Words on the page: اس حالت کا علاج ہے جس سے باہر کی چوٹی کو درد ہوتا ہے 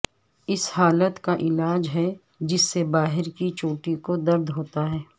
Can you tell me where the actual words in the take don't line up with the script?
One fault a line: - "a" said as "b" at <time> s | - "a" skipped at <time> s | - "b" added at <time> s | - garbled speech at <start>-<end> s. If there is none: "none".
none